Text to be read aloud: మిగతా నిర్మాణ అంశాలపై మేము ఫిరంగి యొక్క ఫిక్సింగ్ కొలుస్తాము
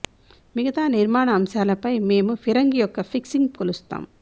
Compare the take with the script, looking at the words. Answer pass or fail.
pass